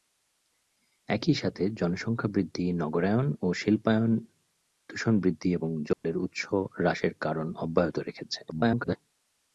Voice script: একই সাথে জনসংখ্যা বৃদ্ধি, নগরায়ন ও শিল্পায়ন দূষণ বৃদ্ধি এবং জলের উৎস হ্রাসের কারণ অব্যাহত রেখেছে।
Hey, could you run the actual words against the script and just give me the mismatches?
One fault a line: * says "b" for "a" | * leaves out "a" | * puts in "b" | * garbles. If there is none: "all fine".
* garbles